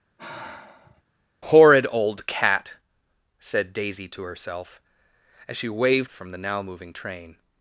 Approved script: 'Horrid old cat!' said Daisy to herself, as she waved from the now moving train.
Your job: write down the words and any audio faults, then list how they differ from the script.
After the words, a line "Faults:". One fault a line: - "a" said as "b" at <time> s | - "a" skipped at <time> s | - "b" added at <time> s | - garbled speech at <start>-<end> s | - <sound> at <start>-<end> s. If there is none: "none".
'Horrid old cat!' said Daisy to herself, as she waved from the now moving train.
Faults:
- sigh at 0.2-1.0 s